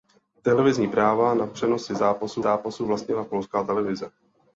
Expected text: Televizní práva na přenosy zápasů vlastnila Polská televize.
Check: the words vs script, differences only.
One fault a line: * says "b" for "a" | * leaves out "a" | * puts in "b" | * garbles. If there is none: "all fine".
* puts in "zápasů"